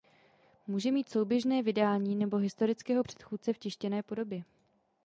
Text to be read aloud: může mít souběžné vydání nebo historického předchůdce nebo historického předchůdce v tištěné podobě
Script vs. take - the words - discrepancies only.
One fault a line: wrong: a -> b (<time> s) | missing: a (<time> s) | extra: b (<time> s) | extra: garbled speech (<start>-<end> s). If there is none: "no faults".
missing: nebo historického předchůdce (3.5 s)